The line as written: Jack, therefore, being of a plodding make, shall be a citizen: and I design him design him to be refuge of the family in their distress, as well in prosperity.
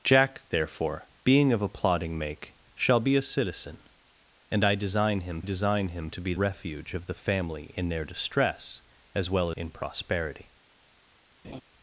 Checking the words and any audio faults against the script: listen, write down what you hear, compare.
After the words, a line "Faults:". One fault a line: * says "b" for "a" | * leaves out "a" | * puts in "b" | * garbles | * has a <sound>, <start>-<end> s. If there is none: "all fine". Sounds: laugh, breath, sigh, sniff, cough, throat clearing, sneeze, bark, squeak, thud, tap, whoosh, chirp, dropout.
Jack, therefore, being of a plodding make, shall be a citizen: and I design him design him to be refuge of the family in their distress, as well in prosperity.
Faults:
* has a laugh, 11.4-11.6 s